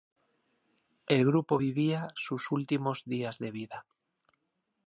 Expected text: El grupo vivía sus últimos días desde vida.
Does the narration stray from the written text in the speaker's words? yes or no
yes